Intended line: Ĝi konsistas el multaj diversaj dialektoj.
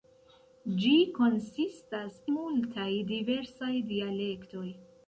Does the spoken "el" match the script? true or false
false